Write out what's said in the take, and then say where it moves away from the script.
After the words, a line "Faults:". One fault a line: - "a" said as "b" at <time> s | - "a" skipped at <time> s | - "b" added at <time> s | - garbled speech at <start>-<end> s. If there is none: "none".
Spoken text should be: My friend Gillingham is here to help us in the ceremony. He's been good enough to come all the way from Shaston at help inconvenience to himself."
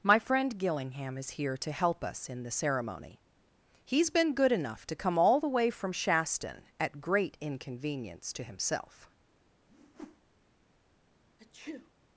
My friend Gillingham is here to help us in the ceremony. He's been good enough to come all the way from Shaston at great inconvenience to himself."
Faults:
- "help" said as "great" at 7.0 s